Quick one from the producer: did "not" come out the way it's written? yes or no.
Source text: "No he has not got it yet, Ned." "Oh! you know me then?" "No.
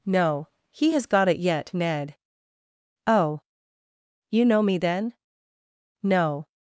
no